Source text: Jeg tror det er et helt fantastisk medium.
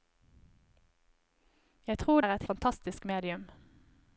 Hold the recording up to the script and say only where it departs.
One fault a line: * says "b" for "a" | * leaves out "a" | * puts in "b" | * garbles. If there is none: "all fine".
* leaves out "det"
* leaves out "helt"